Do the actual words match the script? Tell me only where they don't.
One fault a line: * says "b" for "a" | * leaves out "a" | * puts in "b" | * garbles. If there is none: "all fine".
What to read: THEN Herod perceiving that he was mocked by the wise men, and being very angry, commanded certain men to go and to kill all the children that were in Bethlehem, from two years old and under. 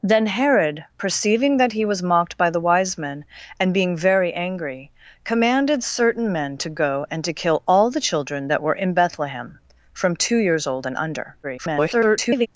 * garbles